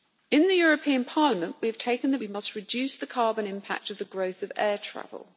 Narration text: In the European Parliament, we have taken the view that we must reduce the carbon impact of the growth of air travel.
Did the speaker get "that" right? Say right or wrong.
wrong